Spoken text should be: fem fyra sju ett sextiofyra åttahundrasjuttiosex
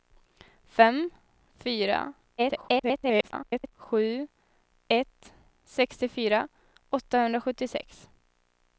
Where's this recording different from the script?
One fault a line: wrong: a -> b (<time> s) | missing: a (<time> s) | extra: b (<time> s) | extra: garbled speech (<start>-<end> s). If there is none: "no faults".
extra: garbled speech (2.4-3.7 s)